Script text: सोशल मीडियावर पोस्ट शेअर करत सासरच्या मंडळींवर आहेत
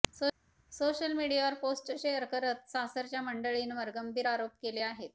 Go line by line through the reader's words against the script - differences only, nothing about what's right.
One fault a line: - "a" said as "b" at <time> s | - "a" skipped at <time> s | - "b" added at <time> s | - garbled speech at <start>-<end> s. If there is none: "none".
- "गंभीर आरोप केले" added at 4.0 s